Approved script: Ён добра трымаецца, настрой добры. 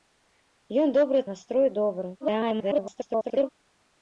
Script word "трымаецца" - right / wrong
wrong